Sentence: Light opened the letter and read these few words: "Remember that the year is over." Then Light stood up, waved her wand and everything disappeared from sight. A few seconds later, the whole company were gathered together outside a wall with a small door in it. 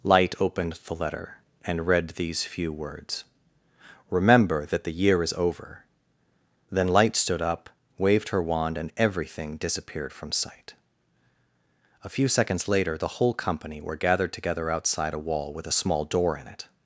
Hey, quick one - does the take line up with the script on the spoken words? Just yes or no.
yes